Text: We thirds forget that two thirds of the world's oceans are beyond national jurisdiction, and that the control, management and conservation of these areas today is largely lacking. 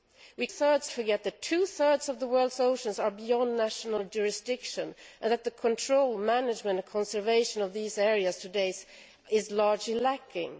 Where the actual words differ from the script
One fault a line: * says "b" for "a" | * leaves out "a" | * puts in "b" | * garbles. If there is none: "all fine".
all fine